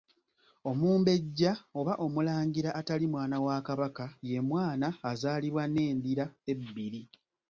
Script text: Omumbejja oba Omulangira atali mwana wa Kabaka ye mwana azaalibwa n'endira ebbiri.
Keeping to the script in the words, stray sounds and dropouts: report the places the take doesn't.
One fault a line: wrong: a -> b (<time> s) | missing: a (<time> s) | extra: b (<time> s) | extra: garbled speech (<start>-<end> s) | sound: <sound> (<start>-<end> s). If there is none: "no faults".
no faults